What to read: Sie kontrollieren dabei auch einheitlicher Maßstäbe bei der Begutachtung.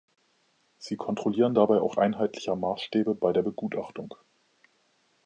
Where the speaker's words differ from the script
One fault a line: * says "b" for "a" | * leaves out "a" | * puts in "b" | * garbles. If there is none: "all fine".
all fine